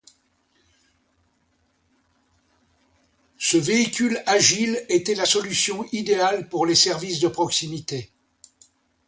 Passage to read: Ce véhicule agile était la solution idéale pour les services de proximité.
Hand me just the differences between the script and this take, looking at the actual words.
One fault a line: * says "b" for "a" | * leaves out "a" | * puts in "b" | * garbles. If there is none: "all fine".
all fine